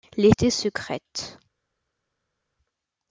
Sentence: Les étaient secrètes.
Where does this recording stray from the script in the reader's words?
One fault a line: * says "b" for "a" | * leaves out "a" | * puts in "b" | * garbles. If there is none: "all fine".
all fine